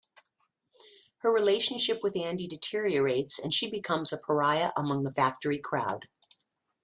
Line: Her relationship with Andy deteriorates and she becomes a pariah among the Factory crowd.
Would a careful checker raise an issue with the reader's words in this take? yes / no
no